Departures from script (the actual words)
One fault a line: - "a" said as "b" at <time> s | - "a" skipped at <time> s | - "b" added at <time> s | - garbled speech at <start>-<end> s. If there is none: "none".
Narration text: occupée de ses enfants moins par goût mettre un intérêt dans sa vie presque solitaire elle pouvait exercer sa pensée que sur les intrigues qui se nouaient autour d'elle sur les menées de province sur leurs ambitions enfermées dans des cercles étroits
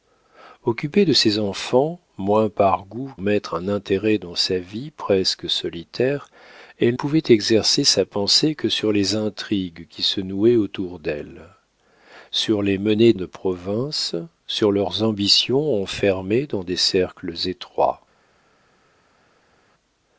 none